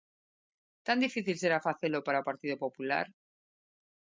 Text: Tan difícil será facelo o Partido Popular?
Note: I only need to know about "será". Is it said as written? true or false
true